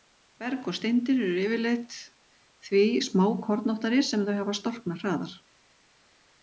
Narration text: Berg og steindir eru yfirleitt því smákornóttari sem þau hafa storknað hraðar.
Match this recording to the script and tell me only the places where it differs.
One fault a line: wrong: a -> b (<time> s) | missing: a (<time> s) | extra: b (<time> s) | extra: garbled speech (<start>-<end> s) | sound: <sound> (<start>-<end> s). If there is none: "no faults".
no faults